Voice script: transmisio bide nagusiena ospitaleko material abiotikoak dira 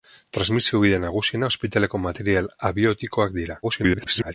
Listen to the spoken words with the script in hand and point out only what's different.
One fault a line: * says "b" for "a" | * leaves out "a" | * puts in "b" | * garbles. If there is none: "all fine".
* garbles